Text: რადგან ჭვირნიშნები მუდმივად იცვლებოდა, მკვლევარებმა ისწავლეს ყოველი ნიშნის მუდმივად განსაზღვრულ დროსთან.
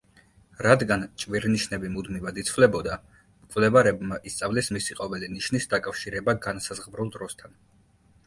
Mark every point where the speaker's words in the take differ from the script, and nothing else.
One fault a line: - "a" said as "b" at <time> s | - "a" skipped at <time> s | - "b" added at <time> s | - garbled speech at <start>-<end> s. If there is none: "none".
- "მისი" added at 4.8 s
- "მუდმივად" said as "დაკავშირება" at 5.7 s